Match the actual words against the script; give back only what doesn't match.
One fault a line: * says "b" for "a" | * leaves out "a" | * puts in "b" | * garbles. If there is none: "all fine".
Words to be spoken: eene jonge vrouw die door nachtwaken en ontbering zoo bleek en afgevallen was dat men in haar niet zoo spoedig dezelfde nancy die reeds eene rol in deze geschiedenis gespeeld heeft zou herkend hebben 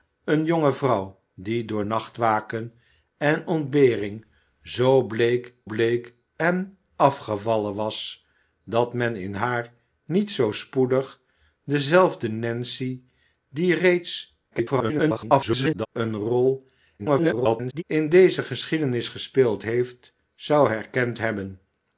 * puts in "bleek"
* garbles
* garbles